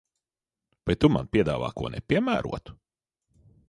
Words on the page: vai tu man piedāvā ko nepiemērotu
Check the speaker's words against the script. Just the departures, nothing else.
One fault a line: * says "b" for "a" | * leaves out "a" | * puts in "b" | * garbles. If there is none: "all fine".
all fine